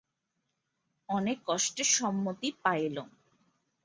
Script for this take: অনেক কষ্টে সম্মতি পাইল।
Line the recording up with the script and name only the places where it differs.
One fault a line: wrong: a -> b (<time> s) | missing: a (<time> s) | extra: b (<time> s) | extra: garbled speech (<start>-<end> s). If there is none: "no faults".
no faults